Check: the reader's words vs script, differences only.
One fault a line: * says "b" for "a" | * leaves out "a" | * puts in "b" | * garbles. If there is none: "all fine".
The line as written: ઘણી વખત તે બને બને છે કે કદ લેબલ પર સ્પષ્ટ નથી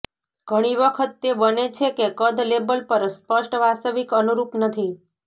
* leaves out "બને"
* puts in "વાસ્તવિક અનુરૂપ"